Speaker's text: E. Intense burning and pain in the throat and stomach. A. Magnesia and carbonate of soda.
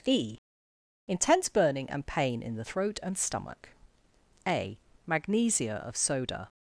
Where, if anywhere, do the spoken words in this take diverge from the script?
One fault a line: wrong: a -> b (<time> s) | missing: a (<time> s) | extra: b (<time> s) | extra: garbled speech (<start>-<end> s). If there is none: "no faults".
missing: and carbonate (5.8 s)